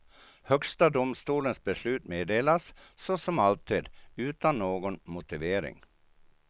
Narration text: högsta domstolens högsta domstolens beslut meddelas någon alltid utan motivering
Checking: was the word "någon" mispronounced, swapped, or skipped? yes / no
yes